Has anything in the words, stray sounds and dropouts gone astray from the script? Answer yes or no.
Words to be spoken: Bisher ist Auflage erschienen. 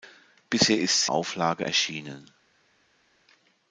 no